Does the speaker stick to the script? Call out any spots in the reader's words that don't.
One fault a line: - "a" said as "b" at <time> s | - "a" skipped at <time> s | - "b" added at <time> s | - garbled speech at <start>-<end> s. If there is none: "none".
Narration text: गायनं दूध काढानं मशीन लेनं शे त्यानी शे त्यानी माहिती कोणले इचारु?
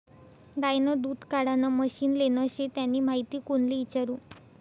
- "शे त्यानी" skipped at 3.0 s